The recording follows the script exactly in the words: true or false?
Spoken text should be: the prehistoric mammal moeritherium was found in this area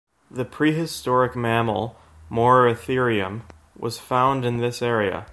true